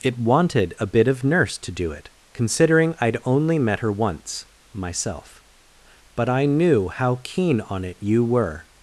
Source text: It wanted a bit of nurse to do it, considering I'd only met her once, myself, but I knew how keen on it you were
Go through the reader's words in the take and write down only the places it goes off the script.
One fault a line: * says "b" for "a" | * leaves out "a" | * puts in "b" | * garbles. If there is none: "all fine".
all fine